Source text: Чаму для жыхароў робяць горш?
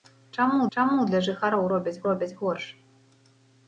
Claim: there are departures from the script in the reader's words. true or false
true